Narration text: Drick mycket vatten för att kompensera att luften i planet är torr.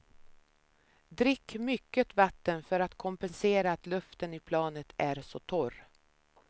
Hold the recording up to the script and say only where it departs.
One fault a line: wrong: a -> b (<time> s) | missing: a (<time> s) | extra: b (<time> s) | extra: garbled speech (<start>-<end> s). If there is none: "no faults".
extra: så (5.2 s)